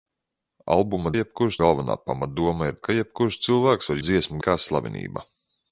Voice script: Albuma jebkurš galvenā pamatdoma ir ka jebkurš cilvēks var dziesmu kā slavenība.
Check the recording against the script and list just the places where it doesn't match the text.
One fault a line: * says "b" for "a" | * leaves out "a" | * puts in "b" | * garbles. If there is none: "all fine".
all fine